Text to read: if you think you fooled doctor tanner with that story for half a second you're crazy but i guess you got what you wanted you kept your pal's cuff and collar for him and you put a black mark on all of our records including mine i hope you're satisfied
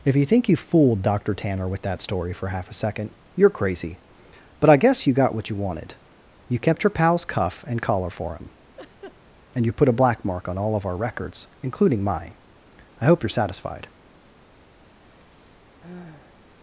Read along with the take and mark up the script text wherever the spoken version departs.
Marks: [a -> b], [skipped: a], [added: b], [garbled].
if you think you fooled doctor tanner with that story for half a second you're crazy but i guess you got what you wanted you kept your pal's cuff and collar for him and you put a black mark on all of our records including mine i hope you're satisfied